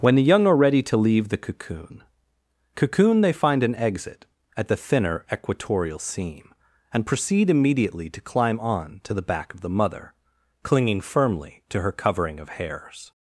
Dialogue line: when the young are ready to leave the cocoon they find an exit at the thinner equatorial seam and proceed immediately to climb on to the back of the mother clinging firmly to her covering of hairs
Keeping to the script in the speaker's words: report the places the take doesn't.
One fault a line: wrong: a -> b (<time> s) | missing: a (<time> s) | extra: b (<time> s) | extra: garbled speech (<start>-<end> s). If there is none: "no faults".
extra: cocoon (2.7 s)